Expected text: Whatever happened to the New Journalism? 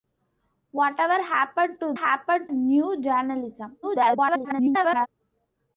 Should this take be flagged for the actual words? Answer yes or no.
yes